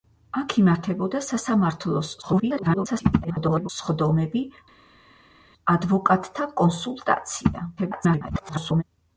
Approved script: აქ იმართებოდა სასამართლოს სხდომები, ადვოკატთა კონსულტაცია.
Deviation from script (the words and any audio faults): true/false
true